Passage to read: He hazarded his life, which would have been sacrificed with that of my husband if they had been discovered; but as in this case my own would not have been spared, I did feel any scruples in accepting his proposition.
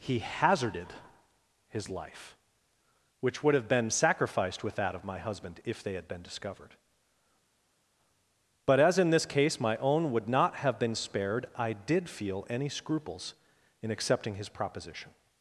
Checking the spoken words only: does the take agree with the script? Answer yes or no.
yes